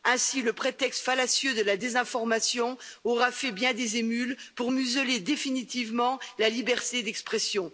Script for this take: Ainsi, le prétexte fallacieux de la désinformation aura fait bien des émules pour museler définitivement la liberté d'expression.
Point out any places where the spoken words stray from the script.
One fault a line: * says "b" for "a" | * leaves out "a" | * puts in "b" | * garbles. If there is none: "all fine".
all fine